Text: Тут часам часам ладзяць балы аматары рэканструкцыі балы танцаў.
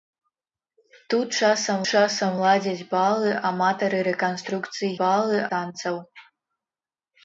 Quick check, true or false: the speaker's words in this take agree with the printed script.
true